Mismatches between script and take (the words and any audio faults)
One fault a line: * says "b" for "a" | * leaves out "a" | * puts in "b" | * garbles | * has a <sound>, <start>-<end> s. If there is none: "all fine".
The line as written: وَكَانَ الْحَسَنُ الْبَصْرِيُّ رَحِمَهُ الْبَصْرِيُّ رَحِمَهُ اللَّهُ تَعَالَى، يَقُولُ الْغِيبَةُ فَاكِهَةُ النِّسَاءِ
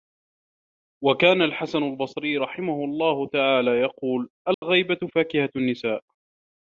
* leaves out "الْبَصْرِيُّ رَحِمَهُ"
* has a dropout, 4.5-4.6 s